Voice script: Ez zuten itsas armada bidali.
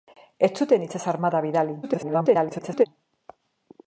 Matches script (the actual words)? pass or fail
fail